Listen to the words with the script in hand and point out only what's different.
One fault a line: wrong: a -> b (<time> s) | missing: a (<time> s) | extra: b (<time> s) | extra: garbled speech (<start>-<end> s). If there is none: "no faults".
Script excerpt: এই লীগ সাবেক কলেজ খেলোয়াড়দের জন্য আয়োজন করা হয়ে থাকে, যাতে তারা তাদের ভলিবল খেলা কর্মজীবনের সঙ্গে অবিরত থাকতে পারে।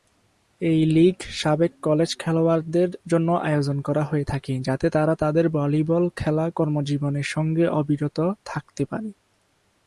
no faults